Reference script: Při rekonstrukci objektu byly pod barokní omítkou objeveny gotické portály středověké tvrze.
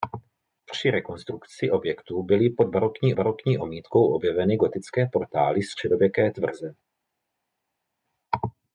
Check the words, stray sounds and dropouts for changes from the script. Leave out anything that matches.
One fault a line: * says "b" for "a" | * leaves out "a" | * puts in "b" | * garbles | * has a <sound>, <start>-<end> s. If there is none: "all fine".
* puts in "barokní"